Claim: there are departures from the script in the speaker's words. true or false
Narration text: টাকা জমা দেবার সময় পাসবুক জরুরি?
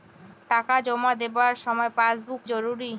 false